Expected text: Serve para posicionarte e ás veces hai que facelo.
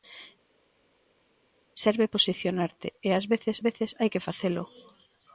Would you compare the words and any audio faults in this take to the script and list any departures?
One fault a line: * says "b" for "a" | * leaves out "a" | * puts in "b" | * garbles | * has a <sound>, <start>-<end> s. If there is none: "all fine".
* leaves out "para"
* puts in "veces"